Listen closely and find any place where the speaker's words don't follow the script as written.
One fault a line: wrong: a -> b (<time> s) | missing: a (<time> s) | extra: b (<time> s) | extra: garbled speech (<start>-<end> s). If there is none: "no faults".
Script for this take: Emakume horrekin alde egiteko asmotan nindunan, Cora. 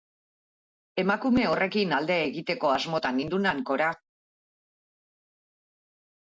no faults